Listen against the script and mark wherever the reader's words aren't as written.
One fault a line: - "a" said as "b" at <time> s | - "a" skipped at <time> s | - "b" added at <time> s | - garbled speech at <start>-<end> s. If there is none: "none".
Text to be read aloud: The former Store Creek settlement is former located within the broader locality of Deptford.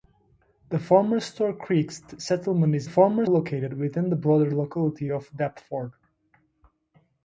none